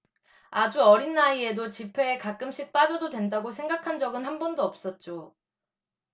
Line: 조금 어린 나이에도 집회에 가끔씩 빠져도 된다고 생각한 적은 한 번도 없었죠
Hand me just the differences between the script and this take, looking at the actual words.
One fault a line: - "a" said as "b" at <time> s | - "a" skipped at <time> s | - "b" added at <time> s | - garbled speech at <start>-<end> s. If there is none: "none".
- "조금" said as "아주" at 0.5 s